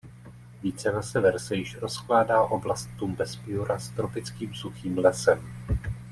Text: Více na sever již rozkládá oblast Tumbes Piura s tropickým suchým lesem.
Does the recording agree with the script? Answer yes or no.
no